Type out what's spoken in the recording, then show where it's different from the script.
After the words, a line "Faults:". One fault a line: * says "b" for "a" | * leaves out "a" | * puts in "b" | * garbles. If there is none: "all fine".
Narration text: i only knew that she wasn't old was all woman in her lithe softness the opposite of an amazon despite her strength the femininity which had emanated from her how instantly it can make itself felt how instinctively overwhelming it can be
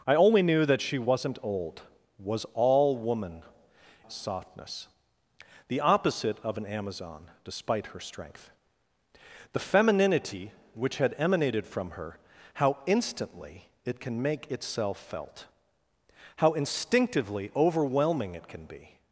i only knew that she wasn't old was all woman softness the opposite of an amazon despite her strength the femininity which had emanated from her how instantly it can make itself felt how instinctively overwhelming it can be
Faults:
* leaves out "in her lithe"